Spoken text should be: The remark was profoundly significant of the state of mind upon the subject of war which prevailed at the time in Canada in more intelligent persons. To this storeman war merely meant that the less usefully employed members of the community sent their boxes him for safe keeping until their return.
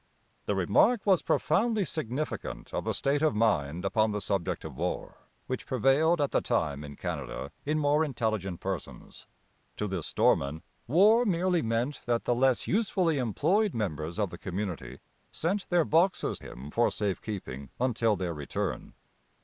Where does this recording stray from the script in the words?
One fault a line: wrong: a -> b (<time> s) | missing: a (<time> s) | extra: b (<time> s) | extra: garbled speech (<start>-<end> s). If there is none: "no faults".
no faults